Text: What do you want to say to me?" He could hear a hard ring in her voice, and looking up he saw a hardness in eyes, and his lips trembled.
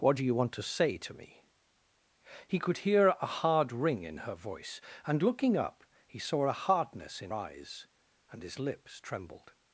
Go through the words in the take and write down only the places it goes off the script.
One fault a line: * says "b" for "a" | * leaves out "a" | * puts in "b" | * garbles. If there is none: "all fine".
all fine